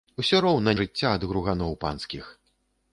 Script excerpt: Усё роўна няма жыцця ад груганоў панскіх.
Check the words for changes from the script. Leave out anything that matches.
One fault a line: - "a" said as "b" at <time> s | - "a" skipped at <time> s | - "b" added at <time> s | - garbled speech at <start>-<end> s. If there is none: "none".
- "няма" skipped at 0.7 s